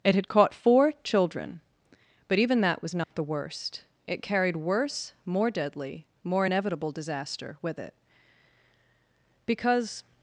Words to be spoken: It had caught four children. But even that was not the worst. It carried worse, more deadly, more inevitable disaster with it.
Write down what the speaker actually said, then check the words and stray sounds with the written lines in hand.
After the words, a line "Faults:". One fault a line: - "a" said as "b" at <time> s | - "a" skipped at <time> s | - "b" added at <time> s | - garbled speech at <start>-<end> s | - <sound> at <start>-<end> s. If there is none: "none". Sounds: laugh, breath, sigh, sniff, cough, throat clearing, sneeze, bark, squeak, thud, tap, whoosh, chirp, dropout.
It had caught four children. But even that was not the worst. It carried worse, more deadly, more inevitable disaster with it. Because
Faults:
- dropout at 3.0-3.1 s
- "Because" added at 9.5 s